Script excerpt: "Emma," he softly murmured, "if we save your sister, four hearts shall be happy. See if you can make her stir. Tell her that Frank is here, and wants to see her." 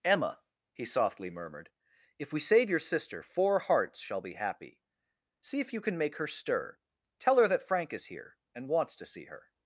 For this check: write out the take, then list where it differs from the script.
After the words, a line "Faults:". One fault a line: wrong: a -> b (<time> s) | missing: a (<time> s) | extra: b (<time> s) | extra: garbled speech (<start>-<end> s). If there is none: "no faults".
"Emma," he softly murmured, "if we save your sister, four hearts shall be happy. See if you can make her stir. Tell her that Frank is here, and wants to see her."
Faults:
no faults